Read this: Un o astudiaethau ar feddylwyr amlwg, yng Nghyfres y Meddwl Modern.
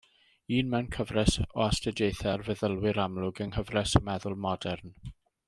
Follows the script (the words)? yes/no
no